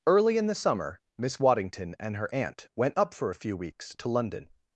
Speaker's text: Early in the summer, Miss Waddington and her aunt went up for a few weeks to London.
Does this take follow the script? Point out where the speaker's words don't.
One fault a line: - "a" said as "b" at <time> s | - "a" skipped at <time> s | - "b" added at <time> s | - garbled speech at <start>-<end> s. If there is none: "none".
none